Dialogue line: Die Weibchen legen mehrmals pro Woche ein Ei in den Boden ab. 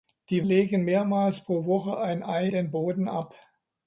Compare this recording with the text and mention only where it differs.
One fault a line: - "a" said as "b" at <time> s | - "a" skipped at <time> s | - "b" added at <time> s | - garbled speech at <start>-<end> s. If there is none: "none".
- "Weibchen" skipped at 0.4 s
- "in" skipped at 2.5 s